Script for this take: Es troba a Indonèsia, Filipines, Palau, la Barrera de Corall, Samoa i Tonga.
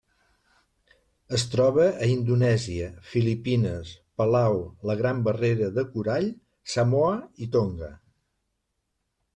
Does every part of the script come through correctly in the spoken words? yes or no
no